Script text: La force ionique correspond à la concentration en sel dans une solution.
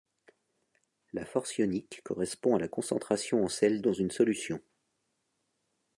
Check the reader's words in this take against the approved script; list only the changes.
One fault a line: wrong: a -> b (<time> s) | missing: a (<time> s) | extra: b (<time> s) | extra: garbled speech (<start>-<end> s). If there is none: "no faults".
no faults